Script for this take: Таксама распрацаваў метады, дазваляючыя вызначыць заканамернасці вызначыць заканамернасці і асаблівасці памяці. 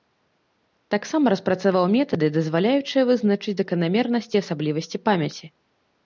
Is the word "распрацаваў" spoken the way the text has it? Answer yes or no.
yes